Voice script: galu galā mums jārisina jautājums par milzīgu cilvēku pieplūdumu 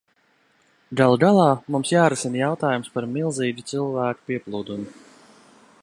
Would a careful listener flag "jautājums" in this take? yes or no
no